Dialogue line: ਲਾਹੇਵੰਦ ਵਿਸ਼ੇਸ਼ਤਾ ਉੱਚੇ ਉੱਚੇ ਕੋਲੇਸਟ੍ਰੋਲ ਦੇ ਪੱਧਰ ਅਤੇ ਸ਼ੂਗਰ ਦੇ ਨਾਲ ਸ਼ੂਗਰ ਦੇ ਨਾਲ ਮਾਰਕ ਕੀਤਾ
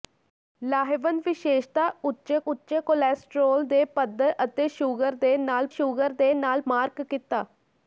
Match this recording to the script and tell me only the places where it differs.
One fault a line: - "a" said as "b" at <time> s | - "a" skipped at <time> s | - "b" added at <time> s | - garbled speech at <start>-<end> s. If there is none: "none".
none